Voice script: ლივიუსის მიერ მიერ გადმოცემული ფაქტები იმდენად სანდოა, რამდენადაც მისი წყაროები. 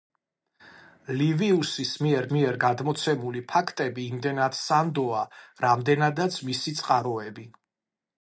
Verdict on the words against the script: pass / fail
pass